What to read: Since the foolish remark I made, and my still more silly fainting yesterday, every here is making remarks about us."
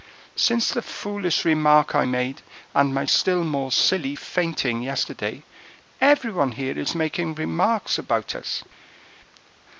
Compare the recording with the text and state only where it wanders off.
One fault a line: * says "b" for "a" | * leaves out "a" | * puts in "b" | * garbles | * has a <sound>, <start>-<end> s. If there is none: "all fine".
* puts in "one"